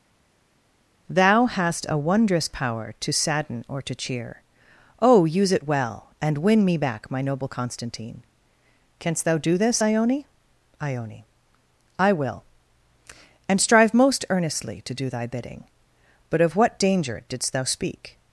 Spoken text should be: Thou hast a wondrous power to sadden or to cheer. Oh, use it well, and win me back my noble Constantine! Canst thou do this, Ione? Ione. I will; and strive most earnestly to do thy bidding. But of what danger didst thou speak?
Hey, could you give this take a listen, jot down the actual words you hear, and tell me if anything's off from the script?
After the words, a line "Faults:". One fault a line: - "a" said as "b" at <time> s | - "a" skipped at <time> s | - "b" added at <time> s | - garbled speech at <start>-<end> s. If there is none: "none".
Thou hast a wondrous power to sadden or to cheer. Oh, use it well, and win me back my noble Constantine! Canst thou do this, Ione? Ione. I will; and strive most earnestly to do thy bidding. But of what danger didst thou speak?
Faults:
none